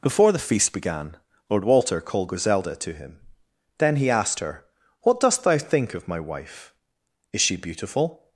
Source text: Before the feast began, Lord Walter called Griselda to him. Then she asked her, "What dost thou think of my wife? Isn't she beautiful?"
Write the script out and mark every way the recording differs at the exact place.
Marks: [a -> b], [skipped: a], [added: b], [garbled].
Before the feast began, Lord Walter called Griselda to him. Then [she -> he] asked her, "What dost thou think of my wife? [Isn't -> Is] she beautiful?"